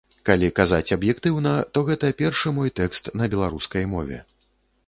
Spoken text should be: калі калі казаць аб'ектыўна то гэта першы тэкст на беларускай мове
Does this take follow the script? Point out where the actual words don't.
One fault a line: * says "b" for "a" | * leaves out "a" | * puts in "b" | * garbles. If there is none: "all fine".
* leaves out "калі"
* puts in "мой"